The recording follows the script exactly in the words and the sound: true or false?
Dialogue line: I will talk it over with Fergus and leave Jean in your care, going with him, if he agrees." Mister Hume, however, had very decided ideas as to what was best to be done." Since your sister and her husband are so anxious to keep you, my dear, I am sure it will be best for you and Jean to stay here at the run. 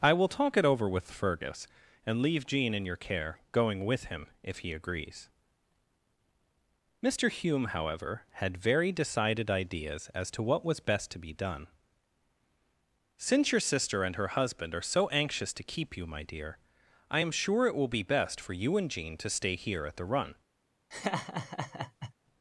false